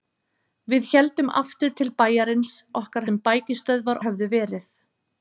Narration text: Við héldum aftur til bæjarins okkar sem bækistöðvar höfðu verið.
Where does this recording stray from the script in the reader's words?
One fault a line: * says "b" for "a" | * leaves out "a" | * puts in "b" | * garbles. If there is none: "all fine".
all fine